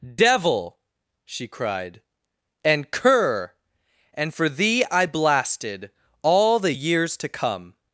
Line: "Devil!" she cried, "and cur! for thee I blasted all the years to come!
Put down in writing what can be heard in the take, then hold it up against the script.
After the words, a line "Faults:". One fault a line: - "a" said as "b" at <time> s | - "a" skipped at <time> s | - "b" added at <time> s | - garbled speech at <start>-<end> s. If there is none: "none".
"Devil!" she cried, "and cur! and for thee I blasted all the years to come!
Faults:
- "and" added at 4.1 s